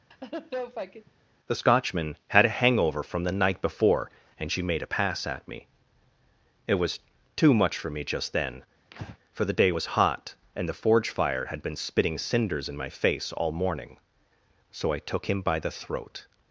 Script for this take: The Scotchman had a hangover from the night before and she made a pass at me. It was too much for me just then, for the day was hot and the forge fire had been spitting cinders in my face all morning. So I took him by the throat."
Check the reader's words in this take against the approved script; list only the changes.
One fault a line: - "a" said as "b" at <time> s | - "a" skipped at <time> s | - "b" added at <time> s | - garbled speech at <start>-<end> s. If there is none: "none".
none